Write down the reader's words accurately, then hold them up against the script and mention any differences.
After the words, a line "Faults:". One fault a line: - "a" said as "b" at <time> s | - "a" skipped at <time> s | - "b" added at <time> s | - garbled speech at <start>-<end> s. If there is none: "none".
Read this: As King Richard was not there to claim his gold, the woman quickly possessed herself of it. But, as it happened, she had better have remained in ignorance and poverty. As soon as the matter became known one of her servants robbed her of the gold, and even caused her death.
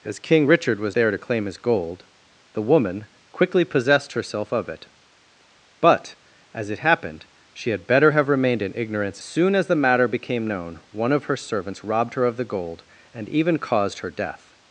As King Richard was there to claim his gold, the woman quickly possessed herself of it. But, as it happened, she had better have remained in ignorance soon as the matter became known one of her servants robbed her of the gold, and even caused her death.
Faults:
- "not" skipped at 0.9 s
- "and poverty As" skipped at 9.2 s